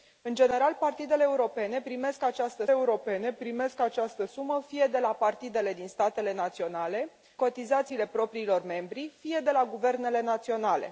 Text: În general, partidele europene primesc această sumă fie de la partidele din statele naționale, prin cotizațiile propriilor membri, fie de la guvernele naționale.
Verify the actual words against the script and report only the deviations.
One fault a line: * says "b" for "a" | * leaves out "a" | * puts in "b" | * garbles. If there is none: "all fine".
* puts in "europene primesc această"
* leaves out "prin"